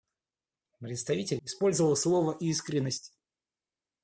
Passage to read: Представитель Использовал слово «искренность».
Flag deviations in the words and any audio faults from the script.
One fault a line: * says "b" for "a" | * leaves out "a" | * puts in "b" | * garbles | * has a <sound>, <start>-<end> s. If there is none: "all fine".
all fine